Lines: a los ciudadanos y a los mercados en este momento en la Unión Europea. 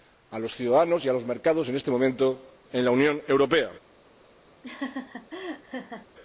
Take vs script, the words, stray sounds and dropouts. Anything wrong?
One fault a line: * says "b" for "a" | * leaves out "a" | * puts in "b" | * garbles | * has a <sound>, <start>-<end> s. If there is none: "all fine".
* has a laugh, 4.6-6.1 s